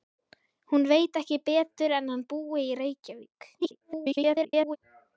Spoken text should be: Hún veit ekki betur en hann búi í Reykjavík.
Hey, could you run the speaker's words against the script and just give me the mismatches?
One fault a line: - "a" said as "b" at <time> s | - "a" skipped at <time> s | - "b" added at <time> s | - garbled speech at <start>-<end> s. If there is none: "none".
- garbled speech at 3.6-4.8 s